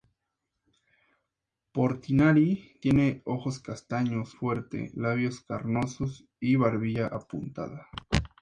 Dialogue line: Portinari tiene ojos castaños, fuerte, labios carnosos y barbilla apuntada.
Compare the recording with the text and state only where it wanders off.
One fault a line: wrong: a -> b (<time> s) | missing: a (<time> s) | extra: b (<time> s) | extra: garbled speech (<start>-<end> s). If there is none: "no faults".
no faults